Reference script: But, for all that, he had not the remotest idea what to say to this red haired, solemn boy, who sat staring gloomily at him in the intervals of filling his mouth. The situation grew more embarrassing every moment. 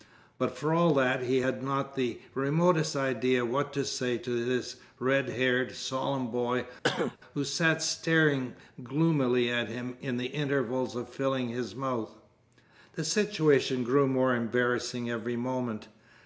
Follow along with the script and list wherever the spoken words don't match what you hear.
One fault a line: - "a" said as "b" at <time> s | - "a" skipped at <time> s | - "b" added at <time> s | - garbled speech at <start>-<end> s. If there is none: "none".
none